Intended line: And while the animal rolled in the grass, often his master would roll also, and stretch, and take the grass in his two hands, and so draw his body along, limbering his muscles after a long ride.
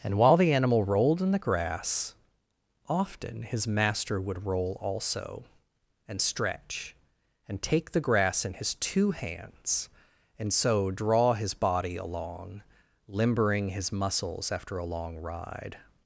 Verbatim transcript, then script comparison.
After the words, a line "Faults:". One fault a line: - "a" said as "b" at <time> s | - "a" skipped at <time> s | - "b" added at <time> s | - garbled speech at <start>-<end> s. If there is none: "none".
And while the animal rolled in the grass, often his master would roll also, and stretch, and take the grass in his two hands, and so draw his body along, limbering his muscles after a long ride.
Faults:
none